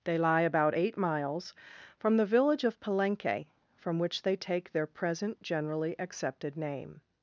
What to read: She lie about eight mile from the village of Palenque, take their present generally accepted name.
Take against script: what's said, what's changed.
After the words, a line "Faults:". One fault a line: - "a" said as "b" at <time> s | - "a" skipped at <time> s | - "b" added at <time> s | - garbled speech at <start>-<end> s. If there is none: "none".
They lie about eight miles from the village of Palenque, from which they take their present generally accepted name.
Faults:
- "She" said as "They" at 0.0 s
- "mile" said as "miles" at 1.0 s
- "from which they" added at 3.8 s